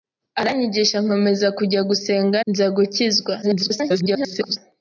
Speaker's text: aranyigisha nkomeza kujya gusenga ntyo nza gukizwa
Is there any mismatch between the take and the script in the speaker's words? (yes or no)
yes